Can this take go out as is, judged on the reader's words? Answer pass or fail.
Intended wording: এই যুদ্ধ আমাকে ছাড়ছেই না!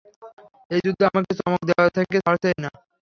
fail